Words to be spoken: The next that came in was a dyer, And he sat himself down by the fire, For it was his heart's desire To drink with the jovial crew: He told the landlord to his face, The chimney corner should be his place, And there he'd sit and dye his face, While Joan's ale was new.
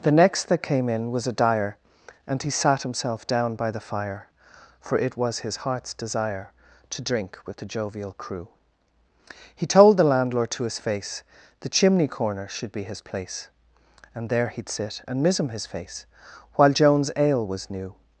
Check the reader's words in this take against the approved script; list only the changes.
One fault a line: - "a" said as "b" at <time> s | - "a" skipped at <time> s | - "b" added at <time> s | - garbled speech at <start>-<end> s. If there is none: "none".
- "dye" said as "mism" at 15.2 s